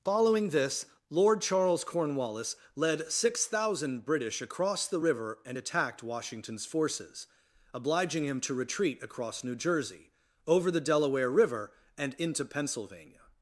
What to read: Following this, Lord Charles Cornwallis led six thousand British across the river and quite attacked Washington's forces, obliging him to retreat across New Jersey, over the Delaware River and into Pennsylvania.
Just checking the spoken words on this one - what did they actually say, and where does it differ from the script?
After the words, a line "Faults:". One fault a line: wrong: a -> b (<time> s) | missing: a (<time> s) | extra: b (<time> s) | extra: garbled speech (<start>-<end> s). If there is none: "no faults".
Following this, Lord Charles Cornwallis led six thousand British across the river and attacked Washington's forces, obliging him to retreat across New Jersey, over the Delaware River and into Pennsylvania.
Faults:
missing: quite (5.6 s)